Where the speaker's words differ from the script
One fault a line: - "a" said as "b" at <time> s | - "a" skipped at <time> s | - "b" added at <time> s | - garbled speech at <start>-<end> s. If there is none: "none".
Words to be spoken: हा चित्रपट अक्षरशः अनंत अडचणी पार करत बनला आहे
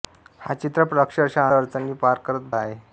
- "अनंत" skipped at 1.5 s
- "बनला" skipped at 2.5 s